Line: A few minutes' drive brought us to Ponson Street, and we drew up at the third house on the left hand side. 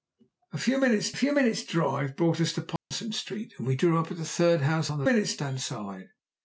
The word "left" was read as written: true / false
false